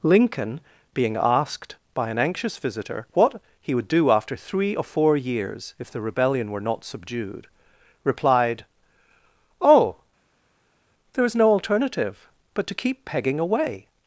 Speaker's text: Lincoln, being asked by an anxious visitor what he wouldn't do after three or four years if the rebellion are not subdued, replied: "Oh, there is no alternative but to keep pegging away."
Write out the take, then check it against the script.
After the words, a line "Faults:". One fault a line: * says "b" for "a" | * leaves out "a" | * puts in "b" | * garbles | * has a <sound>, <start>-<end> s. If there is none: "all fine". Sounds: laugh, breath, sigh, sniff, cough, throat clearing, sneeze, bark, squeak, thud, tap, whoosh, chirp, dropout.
Lincoln, being asked by an anxious visitor what he would do after three or four years if the rebellion were not subdued, replied: "Oh, there is no alternative but to keep pegging away."
Faults:
* says "would" for "wouldn't"
* says "were" for "are"